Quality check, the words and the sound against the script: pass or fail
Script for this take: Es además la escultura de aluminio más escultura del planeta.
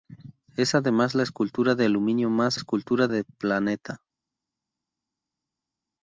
pass